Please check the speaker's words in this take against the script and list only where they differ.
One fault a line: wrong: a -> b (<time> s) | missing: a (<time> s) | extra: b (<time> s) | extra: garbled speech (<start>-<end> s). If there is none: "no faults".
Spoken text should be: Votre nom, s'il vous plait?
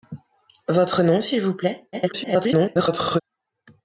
extra: garbled speech (1.9-3.2 s)